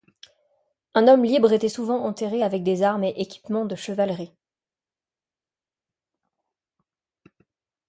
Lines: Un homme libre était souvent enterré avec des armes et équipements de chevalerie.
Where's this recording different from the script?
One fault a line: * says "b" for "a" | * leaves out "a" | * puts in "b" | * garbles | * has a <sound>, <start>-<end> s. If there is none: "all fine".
all fine